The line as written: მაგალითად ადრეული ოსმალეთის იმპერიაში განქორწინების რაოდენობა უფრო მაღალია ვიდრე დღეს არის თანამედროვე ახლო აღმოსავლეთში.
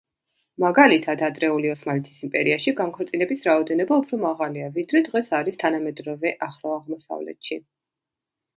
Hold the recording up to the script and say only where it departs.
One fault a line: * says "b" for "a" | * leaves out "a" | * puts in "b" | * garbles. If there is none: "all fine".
all fine